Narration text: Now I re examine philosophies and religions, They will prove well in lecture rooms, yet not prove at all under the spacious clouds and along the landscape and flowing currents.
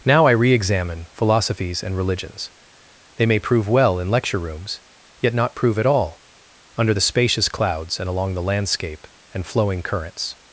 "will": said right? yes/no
no